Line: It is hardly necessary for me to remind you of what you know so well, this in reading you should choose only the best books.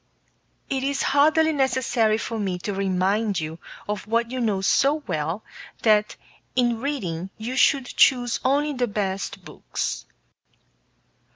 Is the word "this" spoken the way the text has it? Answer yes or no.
no